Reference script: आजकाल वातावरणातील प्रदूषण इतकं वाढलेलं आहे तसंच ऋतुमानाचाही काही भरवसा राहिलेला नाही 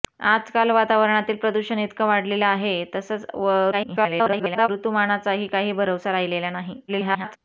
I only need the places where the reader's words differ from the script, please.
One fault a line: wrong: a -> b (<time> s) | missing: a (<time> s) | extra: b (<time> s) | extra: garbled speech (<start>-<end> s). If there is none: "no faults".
extra: garbled speech (3.7-4.7 s)
extra: garbled speech (6.9-7.4 s)